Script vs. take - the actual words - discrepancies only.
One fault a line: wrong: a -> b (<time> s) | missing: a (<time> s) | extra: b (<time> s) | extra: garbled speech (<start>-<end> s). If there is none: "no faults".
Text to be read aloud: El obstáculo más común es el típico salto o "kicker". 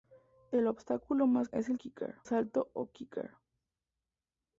missing: común (1.5 s)
wrong: típico -> kicker (1.8 s)